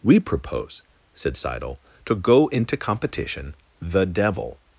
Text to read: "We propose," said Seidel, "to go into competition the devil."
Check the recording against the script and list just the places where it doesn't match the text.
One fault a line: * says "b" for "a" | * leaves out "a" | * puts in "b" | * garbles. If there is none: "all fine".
all fine